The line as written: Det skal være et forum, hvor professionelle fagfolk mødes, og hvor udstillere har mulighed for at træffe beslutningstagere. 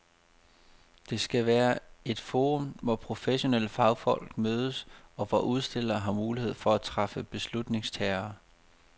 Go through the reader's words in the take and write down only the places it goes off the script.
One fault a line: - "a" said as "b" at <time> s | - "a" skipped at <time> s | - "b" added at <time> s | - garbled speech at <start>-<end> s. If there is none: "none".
none